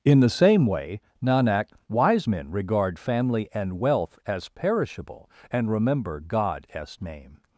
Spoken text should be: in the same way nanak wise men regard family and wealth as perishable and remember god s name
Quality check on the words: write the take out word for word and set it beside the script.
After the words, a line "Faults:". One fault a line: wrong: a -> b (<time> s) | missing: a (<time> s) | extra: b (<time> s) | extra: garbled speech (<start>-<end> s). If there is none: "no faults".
in the same way nanak wise men regard family and wealth as perishable and remember god as name
Faults:
wrong: s -> as (6.7 s)